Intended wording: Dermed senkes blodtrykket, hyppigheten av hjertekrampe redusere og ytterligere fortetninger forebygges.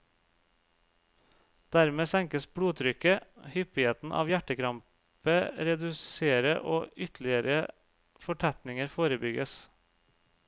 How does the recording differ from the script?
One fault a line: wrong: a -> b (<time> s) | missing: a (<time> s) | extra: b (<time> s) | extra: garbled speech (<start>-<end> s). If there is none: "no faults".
no faults